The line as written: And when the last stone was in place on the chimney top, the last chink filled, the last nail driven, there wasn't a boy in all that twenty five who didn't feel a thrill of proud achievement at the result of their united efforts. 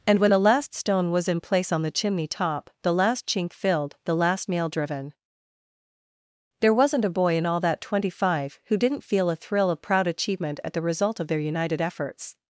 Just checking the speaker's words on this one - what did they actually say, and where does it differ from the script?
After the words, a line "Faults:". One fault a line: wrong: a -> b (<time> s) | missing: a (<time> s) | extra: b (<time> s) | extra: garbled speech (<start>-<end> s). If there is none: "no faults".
And when the last stone was in place on the chimney top, the last chink filled, the last nail driven, there wasn't a boy in all that twenty five who didn't feel a thrill of proud achievement at the result of their united efforts.
Faults:
no faults